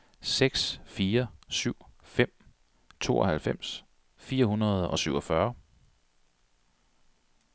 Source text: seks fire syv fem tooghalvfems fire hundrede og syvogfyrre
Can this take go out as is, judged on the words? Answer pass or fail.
pass